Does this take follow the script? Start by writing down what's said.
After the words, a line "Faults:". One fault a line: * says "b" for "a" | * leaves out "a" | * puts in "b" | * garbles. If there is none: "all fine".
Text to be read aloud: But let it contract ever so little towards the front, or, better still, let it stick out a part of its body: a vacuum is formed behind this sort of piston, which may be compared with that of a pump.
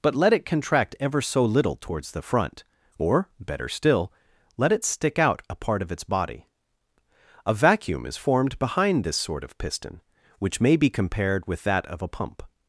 But let it contract ever so little towards the front, or, better still, let it stick out a part of its body: a vacuum is formed behind this sort of piston, which may be compared with that of a pump.
Faults:
all fine